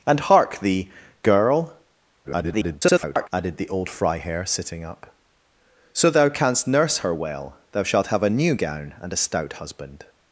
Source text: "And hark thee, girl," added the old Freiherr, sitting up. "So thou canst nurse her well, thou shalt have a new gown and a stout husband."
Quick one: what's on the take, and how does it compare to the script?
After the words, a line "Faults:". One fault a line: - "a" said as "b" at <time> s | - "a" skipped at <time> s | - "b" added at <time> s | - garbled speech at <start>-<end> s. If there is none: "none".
"And hark thee, girl," [garbled] added the old Freiherr, sitting up. "So thou canst nurse her well, thou shalt have a new gown and a stout husband."
Faults:
- garbled speech at 2.2-3.3 s